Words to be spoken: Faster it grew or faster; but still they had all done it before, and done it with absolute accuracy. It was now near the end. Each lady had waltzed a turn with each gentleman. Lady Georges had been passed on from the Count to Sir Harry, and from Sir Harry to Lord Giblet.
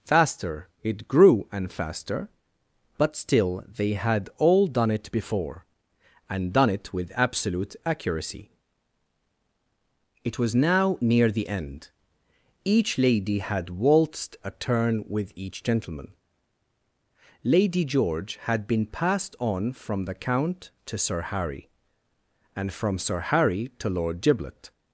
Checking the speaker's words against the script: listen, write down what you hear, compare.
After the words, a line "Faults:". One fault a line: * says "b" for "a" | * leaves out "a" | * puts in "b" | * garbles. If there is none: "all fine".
Faster it grew and faster; but still they had all done it before, and done it with absolute accuracy. It was now near the end. Each lady had waltzed a turn with each gentleman. Lady George had been passed on from the Count to Sir Harry, and from Sir Harry to Lord Giblet.
Faults:
* says "and" for "or"
* says "George" for "Georges"